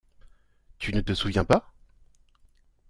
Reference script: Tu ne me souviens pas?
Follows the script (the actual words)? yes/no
no